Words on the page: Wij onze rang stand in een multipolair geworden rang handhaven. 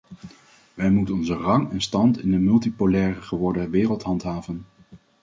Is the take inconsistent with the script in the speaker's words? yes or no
yes